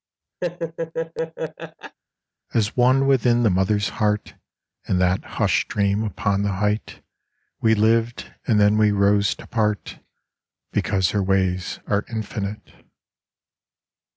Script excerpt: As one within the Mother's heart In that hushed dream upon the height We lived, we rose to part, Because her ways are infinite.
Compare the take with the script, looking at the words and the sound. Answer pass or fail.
fail